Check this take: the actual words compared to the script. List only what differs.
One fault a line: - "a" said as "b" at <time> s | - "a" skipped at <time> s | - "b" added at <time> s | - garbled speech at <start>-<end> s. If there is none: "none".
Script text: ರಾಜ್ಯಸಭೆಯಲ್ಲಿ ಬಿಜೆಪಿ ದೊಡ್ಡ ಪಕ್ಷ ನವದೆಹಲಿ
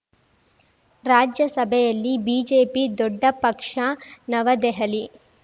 none